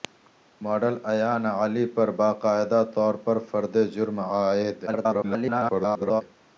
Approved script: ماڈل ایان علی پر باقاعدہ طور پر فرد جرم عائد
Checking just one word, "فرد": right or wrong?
right